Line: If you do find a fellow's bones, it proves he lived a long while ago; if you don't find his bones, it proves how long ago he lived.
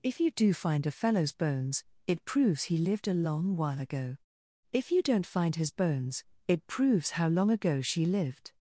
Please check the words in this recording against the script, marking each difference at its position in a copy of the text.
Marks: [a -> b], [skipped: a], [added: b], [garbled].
If you do find a fellow's bones, it proves he lived a long while ago; if you don't find his bones, it proves how long ago [he -> she] lived.